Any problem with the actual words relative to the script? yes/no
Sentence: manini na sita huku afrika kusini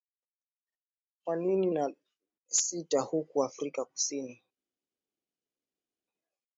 no